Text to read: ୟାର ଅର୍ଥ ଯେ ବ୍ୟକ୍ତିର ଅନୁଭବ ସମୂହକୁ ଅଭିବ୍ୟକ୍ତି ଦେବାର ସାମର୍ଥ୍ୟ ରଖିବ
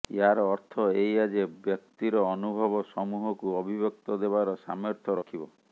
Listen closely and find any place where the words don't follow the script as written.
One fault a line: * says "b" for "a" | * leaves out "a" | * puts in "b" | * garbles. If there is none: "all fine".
* puts in "ଏଇଆ"